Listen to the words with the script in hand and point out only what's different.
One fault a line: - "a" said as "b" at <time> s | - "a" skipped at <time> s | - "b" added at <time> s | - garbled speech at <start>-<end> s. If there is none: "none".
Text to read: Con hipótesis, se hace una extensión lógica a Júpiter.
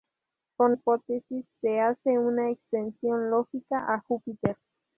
none